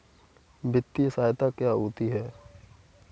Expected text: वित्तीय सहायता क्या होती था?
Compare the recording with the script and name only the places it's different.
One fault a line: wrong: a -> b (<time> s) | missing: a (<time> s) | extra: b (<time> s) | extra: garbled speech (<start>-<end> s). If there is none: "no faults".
wrong: था -> है (2.1 s)